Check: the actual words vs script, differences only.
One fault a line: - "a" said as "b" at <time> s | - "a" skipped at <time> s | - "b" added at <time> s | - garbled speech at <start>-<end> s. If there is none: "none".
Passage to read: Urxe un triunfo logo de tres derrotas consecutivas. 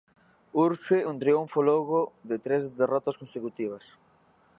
none